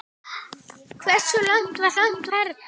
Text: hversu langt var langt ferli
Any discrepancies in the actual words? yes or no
no